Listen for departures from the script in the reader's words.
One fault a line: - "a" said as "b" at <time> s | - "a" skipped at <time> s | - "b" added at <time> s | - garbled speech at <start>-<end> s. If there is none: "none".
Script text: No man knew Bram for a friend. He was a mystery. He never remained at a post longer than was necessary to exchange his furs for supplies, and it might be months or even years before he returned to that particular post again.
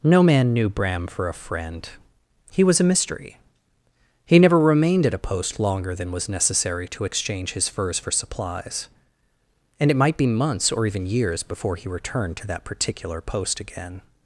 none